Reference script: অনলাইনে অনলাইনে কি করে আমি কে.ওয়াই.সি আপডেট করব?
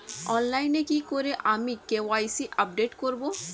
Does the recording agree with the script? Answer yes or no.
no